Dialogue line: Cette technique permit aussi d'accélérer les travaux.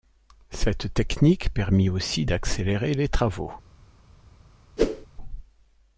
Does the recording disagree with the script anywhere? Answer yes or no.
no